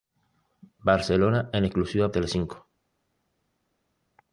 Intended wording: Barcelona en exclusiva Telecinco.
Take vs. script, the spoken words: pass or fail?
pass